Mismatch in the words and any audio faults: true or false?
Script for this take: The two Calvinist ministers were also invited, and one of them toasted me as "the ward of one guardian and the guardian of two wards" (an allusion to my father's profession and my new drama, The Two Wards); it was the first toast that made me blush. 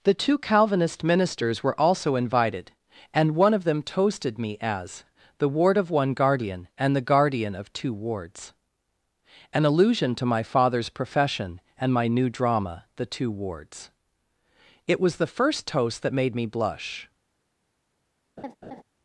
true